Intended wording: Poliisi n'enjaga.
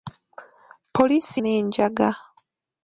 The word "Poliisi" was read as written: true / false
true